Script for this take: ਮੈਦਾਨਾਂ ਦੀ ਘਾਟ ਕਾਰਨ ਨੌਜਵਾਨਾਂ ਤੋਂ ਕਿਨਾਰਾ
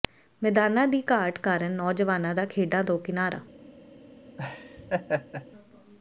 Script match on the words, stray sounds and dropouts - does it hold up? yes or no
no